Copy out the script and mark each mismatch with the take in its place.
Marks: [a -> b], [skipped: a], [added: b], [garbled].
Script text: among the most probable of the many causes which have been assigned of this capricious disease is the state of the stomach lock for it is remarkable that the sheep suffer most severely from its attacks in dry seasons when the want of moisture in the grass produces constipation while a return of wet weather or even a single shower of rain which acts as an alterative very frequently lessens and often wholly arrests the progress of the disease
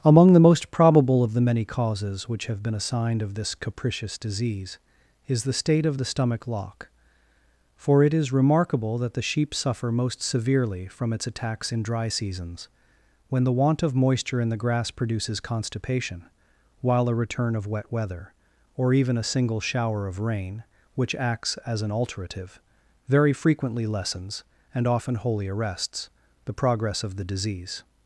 among the most probable of the many causes which have been assigned of this capricious disease is the state of the stomach lock for it is remarkable that the sheep suffer most severely from its attacks in dry seasons when the want of moisture in the grass produces constipation while a return of wet weather or even a single shower of rain which acts as an alterative very frequently lessens and often wholly arrests the progress of the disease